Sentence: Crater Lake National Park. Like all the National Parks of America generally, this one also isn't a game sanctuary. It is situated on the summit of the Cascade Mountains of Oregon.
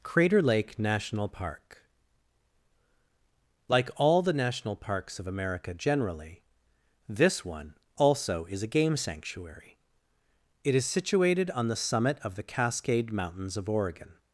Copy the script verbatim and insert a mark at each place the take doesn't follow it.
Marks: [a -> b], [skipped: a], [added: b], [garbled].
Crater Lake National Park. Like all the National Parks of America generally, this one also [isn't -> is] a game sanctuary. It is situated on the summit of the Cascade Mountains of Oregon.